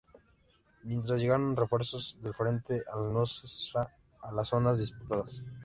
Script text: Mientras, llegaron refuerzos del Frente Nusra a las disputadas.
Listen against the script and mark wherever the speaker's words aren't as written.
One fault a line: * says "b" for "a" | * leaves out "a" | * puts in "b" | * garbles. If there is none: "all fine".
* puts in "al"
* puts in "zonas"